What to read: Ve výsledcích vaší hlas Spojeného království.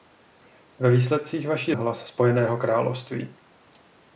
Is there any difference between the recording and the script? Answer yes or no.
no